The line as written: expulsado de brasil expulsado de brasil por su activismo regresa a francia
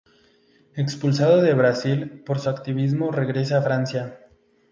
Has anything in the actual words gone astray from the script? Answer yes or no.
yes